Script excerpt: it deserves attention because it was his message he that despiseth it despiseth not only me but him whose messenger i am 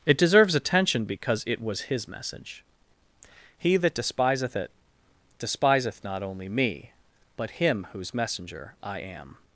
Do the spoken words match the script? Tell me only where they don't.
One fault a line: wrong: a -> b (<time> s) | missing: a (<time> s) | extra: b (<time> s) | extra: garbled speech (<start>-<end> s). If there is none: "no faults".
no faults